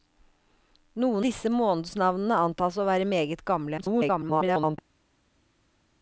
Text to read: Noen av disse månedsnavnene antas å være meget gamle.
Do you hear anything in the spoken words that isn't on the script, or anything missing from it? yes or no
yes